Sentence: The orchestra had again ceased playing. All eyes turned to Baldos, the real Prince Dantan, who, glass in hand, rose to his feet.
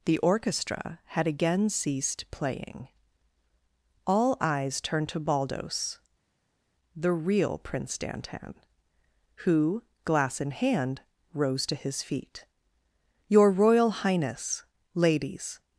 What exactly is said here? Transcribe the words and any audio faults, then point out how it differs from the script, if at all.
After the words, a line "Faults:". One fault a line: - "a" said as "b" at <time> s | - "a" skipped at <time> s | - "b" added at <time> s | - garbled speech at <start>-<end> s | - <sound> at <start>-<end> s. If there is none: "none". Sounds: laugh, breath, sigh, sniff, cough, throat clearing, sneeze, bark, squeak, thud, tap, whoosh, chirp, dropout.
The orchestra had again ceased playing. All eyes turned to Baldos, the real Prince Dantan, who, glass in hand, rose to his feet. "Your Royal Highness, Ladies
Faults:
- "Your Royal Highness Ladies" added at 13.3 s